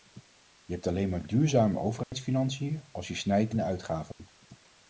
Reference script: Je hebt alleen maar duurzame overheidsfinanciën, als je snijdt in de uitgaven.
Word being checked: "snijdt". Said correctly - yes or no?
yes